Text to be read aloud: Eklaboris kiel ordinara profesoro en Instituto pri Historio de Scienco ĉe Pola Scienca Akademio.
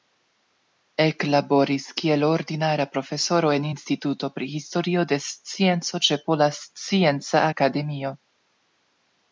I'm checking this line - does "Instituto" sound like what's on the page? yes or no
yes